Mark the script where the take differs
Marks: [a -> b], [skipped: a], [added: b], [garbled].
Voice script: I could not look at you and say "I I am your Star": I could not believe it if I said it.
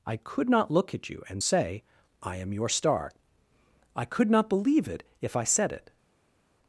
I could not look at you and say "I [skipped: I] am your Star": I could not believe it if I said it.